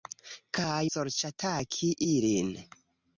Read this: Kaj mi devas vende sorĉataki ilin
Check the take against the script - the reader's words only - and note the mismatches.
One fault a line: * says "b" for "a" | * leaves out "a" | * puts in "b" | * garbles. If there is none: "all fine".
* leaves out "mi devas vende"